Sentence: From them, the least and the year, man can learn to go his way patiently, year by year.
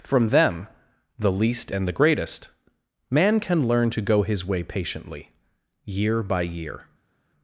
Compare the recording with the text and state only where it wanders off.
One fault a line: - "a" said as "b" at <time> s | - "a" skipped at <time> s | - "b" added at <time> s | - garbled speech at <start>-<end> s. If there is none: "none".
- "year" said as "greatest" at 1.9 s